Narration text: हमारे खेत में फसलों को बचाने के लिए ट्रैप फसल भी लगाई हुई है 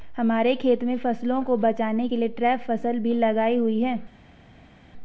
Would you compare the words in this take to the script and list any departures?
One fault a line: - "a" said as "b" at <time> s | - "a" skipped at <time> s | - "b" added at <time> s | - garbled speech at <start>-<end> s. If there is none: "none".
none